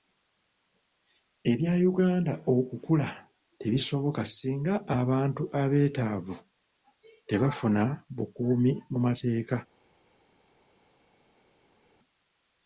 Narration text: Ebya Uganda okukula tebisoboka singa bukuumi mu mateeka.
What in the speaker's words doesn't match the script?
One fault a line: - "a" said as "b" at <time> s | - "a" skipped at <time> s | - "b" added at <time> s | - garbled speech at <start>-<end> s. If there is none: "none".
- "abantu abeetaavu tebafuna" added at 5.0 s